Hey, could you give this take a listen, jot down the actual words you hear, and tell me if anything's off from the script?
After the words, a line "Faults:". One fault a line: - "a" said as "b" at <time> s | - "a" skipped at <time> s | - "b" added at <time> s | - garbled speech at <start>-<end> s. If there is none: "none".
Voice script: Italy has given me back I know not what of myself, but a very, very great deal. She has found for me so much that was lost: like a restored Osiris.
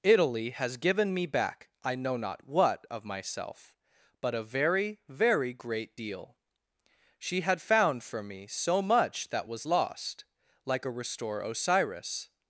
Italy has given me back I know not what of myself, but a very, very great deal. She had found for me so much that was lost: like a restore Osiris.
Faults:
- "has" said as "had" at 7.4 s
- "restored" said as "restore" at 10.9 s